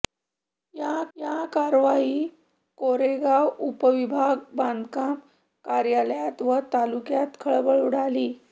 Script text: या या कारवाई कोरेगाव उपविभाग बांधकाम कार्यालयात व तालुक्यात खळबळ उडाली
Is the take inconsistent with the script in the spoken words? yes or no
no